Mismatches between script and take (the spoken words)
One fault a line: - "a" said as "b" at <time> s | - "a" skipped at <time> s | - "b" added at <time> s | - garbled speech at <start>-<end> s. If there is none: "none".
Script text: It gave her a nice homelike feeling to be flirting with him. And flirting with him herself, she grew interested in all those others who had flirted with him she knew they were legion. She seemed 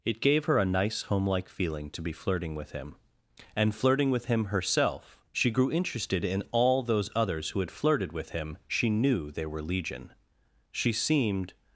none